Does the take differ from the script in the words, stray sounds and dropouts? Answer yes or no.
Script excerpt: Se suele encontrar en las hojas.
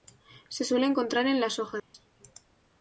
yes